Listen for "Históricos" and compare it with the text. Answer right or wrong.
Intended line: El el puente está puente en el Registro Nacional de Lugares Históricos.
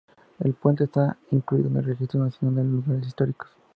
right